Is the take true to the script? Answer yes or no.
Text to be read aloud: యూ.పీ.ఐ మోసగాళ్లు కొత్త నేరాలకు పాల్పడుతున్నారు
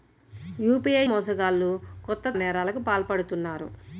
yes